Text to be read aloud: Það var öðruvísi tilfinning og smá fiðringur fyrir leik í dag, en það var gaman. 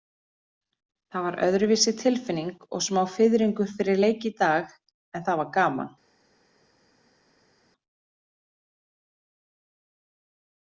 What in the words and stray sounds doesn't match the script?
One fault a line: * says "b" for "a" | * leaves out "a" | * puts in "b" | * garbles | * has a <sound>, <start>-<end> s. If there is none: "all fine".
all fine